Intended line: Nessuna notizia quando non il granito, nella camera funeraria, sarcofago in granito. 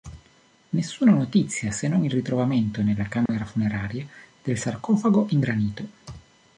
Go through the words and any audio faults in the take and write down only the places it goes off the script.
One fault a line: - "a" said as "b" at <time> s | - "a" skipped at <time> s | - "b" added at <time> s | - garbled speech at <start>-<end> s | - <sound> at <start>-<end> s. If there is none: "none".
- "quando" said as "se" at 1.7 s
- "granito" said as "ritrovamento" at 2.1 s
- dropout at 3.3-3.3 s
- "del" added at 4.4 s